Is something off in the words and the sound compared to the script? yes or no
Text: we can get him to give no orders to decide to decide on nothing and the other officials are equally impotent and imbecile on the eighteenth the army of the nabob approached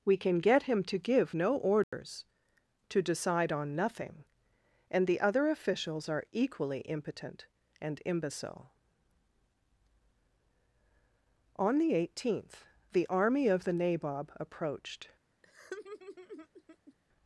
yes